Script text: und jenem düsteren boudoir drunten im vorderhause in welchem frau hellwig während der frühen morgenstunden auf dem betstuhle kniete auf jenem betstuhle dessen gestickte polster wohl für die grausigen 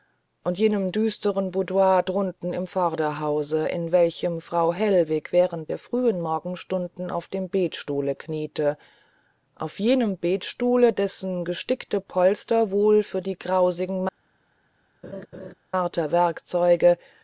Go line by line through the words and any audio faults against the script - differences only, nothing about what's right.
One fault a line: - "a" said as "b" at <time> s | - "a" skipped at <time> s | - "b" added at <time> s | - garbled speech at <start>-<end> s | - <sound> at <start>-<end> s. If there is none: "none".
- laugh at 15.0-15.5 s